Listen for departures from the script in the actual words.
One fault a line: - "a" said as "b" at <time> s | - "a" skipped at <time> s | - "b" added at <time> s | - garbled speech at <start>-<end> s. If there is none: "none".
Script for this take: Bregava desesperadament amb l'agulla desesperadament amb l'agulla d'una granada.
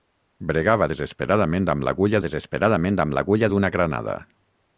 none